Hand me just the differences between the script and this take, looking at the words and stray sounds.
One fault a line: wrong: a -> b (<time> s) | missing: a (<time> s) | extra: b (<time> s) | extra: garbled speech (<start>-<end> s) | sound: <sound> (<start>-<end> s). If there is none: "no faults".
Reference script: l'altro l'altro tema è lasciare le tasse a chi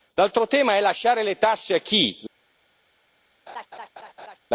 missing: l'altro (0.5 s)
sound: laugh (3.5-4.4 s)